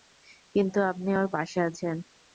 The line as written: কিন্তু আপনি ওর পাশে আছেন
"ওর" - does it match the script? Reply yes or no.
yes